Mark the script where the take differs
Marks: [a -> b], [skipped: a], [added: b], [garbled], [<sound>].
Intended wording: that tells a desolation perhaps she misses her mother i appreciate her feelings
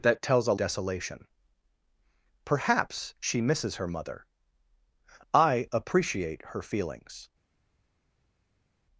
that tells a desolation perhaps she misses her mother i appreciate her feelings